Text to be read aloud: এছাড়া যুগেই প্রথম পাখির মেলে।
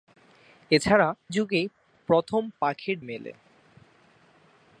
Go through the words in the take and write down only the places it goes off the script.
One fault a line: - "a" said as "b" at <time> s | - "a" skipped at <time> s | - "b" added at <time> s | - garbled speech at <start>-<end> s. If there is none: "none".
none